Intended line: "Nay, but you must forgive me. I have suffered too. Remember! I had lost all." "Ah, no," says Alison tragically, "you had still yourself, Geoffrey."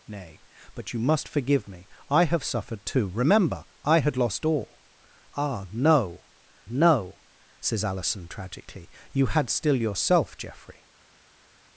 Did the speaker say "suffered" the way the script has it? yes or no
yes